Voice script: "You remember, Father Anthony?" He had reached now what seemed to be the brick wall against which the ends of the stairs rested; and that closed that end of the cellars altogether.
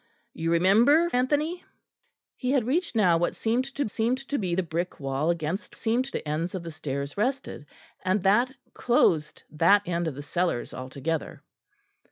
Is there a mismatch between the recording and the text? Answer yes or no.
yes